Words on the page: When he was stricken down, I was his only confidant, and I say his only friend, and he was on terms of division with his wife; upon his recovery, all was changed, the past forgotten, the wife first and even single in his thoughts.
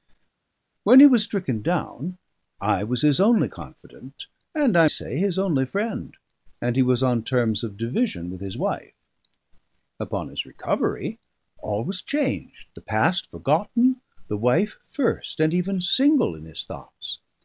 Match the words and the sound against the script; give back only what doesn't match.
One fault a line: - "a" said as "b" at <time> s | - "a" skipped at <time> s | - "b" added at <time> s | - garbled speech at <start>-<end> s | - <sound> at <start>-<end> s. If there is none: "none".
none